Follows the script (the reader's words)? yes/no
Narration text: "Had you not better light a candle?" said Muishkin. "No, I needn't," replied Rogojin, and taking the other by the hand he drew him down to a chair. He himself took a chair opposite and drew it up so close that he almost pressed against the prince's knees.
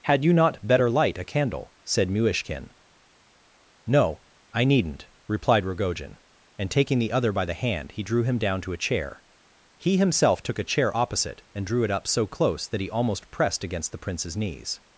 yes